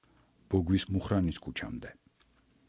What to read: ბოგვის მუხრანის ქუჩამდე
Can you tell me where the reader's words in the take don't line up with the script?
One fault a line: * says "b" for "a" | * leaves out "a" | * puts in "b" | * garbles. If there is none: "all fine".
all fine